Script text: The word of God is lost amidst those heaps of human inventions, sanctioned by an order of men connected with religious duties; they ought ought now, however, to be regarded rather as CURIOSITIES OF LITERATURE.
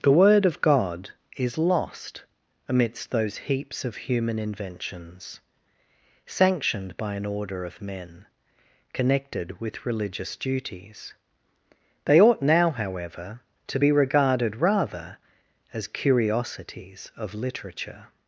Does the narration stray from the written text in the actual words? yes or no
yes